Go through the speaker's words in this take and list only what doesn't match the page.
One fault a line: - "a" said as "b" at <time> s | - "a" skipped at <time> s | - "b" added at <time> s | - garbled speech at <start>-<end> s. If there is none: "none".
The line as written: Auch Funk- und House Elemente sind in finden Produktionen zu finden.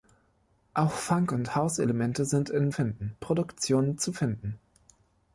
none